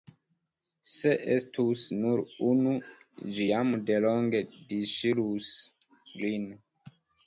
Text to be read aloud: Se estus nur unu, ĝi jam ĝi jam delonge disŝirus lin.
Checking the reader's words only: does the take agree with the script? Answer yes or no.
no